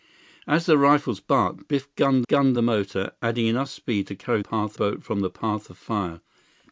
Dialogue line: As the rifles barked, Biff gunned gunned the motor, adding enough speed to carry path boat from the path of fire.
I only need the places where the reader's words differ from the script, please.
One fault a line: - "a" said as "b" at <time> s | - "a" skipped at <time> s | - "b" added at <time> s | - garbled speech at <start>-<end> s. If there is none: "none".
none